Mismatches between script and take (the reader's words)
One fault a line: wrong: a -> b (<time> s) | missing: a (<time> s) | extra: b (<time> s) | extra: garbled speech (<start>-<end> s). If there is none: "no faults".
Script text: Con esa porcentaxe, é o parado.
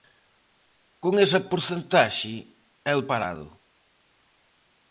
no faults